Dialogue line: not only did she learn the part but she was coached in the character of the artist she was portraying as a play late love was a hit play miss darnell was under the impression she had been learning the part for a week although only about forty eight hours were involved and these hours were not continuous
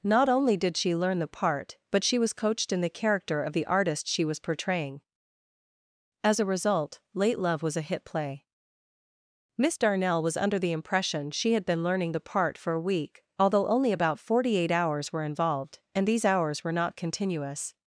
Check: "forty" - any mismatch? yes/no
no